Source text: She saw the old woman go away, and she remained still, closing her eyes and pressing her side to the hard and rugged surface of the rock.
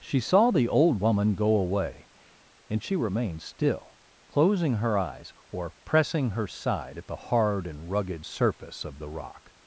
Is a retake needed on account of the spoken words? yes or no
yes